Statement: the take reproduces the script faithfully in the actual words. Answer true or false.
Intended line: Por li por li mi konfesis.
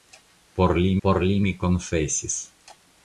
true